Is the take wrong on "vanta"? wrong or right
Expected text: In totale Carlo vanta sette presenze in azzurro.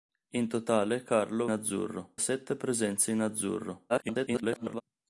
wrong